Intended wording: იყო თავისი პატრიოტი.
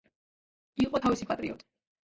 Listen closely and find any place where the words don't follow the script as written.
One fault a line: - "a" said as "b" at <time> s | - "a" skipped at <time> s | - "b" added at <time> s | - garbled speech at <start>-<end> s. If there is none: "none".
none